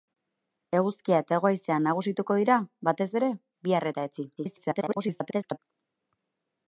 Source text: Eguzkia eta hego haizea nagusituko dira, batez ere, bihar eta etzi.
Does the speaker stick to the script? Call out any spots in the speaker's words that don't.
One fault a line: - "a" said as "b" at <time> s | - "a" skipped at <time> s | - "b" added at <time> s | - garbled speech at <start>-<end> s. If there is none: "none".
- garbled speech at 4.4-5.6 s